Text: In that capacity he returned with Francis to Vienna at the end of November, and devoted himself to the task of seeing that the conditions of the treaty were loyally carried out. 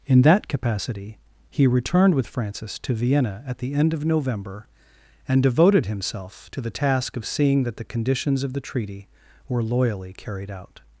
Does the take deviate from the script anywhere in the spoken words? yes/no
no